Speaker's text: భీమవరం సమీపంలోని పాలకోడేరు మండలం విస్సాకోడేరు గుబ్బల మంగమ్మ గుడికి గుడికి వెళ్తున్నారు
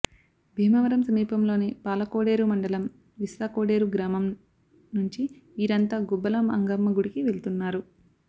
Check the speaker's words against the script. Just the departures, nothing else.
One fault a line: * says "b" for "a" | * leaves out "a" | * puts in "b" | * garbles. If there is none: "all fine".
* puts in "గ్రామం నుంచి వీరంతా"
* leaves out "గుడికి"